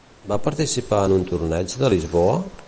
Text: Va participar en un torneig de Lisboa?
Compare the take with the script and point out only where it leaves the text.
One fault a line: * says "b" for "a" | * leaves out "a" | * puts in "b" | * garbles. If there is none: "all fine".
all fine